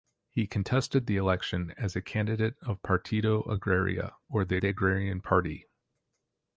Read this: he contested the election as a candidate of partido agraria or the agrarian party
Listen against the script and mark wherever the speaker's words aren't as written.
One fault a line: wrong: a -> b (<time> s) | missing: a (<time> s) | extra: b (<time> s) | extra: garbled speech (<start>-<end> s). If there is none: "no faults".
extra: the (4.6 s)